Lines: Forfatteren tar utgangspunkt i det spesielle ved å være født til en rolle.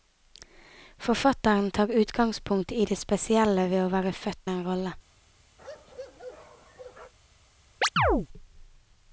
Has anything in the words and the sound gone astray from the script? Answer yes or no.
yes